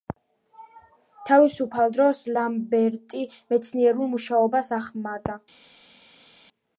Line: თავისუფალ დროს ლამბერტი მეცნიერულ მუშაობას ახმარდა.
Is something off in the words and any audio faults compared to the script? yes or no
no